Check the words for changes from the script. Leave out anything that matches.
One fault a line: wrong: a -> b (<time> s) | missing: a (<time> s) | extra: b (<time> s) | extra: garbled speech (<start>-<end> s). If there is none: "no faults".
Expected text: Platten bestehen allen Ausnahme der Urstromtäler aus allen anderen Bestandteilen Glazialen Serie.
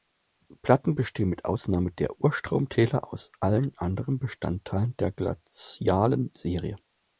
wrong: allen -> mit (1.3 s)
extra: der (5.0 s)